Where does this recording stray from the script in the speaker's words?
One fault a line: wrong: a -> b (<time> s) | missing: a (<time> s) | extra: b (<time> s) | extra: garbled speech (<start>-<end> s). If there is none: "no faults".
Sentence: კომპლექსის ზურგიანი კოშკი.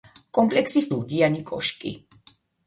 no faults